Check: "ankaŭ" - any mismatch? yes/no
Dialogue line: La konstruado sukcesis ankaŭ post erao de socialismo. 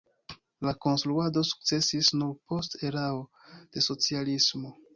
yes